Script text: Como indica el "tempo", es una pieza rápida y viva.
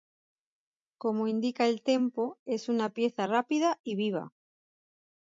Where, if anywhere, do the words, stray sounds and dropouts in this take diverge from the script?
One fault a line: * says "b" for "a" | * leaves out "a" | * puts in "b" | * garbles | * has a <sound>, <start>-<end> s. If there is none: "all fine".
all fine